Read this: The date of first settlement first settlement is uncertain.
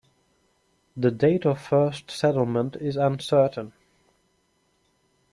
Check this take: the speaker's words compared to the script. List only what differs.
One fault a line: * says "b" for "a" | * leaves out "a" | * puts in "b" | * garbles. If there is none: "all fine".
* leaves out "first settlement"